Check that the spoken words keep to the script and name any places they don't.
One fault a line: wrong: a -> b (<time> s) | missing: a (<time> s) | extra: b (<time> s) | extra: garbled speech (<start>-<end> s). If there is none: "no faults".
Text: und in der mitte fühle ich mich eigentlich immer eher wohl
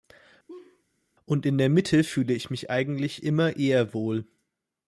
no faults